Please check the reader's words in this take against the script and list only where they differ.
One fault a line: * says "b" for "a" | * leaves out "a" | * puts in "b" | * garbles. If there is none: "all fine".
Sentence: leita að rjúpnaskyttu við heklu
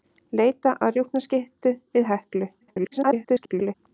* garbles